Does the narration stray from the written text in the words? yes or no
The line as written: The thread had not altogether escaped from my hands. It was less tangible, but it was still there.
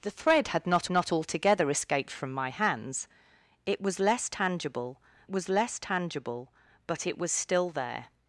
yes